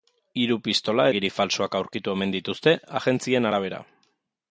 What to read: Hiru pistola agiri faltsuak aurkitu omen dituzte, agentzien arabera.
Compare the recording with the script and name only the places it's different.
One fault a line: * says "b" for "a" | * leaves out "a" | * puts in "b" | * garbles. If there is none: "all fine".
all fine